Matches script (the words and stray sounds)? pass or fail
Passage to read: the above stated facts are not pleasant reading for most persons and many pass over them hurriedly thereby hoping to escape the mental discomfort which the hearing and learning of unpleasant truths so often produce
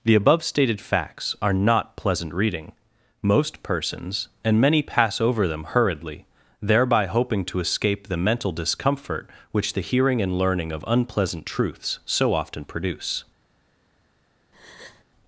fail